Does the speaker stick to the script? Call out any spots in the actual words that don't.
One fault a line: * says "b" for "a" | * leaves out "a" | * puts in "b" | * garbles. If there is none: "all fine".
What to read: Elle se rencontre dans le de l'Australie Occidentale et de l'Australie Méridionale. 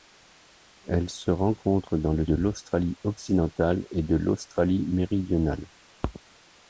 all fine